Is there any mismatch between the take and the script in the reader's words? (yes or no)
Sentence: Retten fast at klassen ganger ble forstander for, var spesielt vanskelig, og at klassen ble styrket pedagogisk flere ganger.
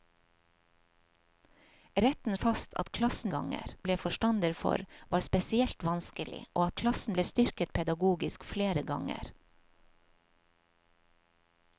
no